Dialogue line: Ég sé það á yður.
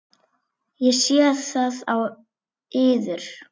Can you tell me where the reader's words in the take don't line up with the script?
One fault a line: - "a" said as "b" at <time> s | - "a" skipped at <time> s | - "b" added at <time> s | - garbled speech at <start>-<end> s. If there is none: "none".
none